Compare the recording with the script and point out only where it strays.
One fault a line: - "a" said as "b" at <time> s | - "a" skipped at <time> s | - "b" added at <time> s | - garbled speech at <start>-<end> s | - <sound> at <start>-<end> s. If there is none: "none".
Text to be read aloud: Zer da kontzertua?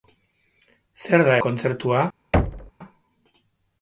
- thud at 2.3-2.7 s